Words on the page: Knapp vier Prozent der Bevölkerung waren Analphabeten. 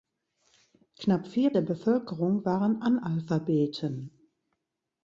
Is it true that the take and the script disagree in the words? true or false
true